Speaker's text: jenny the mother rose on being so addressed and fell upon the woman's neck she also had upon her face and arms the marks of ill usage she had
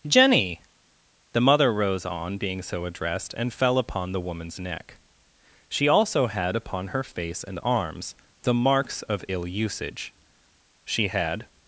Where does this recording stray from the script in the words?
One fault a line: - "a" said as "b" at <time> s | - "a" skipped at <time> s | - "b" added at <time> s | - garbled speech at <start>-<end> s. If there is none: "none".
none